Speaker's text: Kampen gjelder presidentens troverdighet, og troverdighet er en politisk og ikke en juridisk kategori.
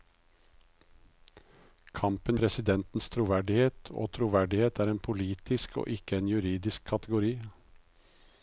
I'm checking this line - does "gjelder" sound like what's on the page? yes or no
no